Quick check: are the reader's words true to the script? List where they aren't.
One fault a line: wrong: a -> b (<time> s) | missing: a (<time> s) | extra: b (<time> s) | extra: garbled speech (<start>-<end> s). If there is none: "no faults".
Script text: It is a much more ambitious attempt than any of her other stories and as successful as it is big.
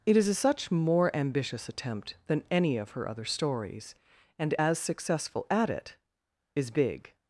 wrong: much -> such (0.3 s)
wrong: as -> at (5.5 s)